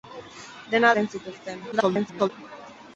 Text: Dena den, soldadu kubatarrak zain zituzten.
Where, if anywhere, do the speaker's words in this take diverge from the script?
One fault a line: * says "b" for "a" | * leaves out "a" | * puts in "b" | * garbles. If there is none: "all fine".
* leaves out "den soldadu kubatarrak"
* garbles